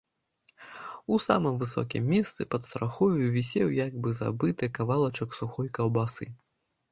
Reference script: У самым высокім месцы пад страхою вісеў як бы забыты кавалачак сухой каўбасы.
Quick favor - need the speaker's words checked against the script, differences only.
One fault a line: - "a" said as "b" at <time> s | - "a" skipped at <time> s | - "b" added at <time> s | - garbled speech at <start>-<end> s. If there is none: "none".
none